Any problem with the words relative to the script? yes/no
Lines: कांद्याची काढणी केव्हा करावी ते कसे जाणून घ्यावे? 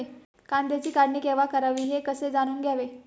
yes